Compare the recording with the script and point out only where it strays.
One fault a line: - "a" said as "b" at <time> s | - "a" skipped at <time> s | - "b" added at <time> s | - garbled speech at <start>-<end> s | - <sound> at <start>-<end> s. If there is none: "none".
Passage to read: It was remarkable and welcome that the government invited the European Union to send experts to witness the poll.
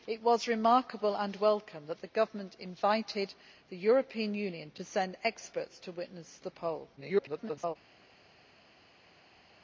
- garbled speech at 7.0-7.8 s